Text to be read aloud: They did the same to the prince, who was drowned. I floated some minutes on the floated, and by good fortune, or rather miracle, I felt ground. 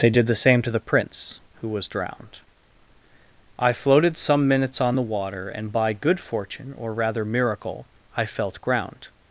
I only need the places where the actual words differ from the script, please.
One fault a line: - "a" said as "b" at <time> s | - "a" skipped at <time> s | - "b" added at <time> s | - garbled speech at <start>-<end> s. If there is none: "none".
- "floated" said as "water" at 5.0 s